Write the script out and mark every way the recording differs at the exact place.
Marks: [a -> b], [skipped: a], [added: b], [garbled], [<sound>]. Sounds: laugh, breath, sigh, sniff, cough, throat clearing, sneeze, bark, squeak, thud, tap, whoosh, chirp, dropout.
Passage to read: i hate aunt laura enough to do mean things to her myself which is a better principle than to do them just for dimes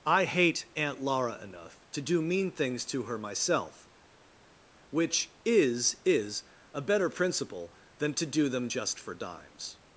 i hate aunt laura enough to do mean things to her myself which is [added: is] a better principle than to do them just for dimes